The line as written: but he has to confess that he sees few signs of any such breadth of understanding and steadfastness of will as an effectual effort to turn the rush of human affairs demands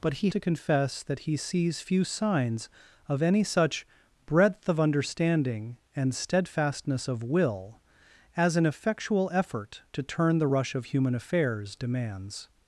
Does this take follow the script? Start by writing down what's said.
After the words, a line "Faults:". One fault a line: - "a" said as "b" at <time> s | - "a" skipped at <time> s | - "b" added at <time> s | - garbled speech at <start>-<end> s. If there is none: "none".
but he to confess that he sees few signs of any such breadth of understanding and steadfastness of will as an effectual effort to turn the rush of human affairs demands
Faults:
- "has" skipped at 0.3 s